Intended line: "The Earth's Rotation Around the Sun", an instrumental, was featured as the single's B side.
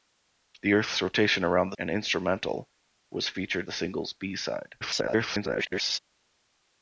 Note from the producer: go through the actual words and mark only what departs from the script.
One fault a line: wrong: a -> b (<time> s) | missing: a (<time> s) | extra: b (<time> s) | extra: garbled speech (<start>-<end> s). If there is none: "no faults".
missing: Sun (1.8 s)
missing: as (3.7 s)
extra: garbled speech (4.8-6.0 s)